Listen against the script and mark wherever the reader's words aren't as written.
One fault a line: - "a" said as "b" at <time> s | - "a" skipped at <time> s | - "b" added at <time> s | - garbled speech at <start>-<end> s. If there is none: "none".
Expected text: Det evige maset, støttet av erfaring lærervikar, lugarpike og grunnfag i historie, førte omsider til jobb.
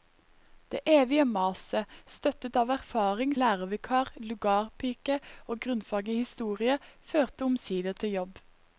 none